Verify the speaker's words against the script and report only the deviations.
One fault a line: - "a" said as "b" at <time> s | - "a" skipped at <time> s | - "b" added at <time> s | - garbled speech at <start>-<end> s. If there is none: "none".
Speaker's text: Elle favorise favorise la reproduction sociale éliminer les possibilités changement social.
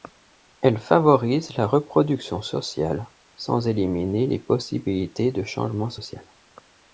- "favorise" skipped at 1.6 s
- "sans" added at 3.4 s
- "de" added at 5.3 s